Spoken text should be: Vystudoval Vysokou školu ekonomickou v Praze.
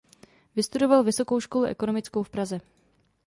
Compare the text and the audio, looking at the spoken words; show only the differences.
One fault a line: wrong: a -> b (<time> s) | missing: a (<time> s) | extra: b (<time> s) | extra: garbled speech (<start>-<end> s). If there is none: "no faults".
no faults